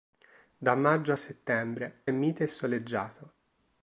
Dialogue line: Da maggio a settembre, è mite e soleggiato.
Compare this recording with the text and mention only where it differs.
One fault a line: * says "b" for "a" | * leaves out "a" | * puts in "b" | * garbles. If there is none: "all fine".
all fine